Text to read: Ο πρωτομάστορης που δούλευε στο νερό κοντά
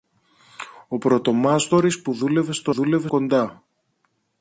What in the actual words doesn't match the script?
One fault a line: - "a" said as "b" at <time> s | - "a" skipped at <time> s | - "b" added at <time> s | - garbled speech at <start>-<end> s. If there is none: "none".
- "νερό" said as "δούλευε" at 2.7 s